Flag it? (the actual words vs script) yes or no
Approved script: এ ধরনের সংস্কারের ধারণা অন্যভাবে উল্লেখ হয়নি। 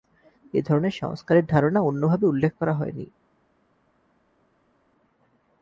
yes